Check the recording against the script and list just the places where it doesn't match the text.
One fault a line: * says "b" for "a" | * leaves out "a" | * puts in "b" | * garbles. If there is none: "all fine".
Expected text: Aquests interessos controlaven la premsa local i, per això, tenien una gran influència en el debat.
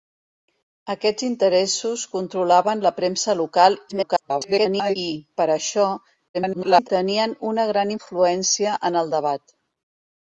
* garbles
* garbles